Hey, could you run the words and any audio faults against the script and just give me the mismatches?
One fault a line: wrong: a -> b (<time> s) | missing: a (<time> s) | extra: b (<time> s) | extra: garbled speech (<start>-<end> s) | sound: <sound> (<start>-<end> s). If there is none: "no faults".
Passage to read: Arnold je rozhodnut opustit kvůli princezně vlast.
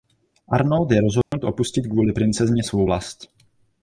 sound: dropout (1.2-1.3 s)
extra: svou (2.6 s)